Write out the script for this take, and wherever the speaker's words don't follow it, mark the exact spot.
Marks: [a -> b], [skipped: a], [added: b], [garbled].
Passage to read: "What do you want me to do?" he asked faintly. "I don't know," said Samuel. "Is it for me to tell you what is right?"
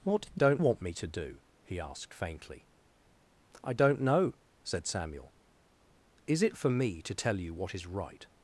"What do [you -> don't] want me to do?" he asked faintly. "I don't know," said Samuel. "Is it for me to tell you what is right?"